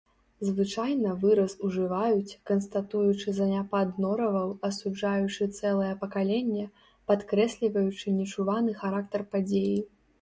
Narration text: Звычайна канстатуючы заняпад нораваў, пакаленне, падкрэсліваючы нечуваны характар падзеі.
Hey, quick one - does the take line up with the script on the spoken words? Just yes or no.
no